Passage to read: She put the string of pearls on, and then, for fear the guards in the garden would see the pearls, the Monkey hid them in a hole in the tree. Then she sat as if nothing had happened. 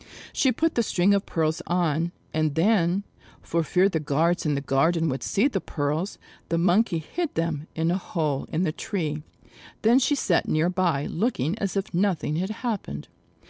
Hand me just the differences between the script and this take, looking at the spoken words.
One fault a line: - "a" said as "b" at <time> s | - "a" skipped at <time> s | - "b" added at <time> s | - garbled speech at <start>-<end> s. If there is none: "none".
- "near by looking" added at 10.5 s